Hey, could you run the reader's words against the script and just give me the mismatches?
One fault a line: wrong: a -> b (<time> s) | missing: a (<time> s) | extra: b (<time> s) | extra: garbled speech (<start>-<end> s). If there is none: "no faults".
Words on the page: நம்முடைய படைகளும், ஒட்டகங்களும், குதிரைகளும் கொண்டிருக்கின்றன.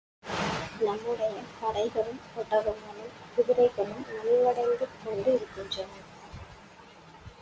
extra: நலிவடைந்து (4.1 s)